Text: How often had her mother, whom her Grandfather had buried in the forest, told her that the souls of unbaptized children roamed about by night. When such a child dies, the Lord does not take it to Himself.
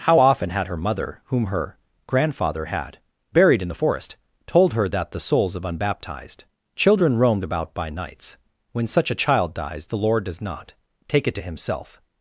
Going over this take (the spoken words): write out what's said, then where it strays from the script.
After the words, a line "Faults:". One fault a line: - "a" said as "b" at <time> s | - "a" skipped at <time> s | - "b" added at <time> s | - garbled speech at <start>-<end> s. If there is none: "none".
How often had her mother, whom her Grandfather had buried in the forest, told her that the souls of unbaptized children roamed about by nights. When such a child dies, the Lord does not take it to Himself.
Faults:
- "night" said as "nights" at 7.9 s